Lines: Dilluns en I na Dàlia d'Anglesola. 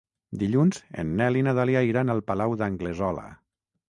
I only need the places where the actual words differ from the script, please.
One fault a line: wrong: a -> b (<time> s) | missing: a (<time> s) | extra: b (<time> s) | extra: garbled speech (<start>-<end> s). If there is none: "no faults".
extra: Nel (1.2 s)
extra: iran al Palau (1.9 s)